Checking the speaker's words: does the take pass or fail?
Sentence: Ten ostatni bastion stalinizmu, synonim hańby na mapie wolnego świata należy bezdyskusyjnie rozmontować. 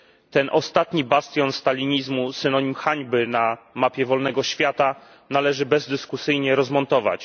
pass